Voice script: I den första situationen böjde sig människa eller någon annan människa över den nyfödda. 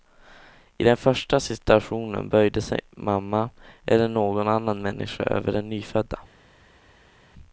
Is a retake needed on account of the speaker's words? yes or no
yes